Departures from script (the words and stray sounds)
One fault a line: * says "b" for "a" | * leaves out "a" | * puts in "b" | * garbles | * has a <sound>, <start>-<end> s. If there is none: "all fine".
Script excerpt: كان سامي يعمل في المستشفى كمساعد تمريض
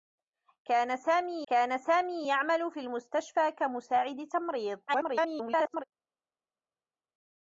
* puts in "كان سامي"
* garbles